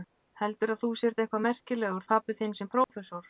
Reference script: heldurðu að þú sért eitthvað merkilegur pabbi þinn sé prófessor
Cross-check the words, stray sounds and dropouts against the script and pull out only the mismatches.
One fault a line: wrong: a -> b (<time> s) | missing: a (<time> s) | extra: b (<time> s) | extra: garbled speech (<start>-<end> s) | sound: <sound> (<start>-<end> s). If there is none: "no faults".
sound: dropout (2.8-2.9 s)